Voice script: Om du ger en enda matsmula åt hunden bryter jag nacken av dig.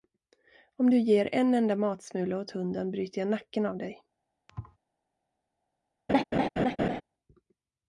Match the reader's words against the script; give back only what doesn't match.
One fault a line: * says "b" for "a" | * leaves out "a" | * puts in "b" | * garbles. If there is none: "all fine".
all fine